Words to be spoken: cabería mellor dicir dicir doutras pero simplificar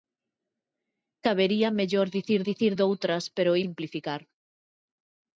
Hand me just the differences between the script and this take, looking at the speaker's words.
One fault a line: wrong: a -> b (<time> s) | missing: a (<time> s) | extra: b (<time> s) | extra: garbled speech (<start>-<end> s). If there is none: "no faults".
no faults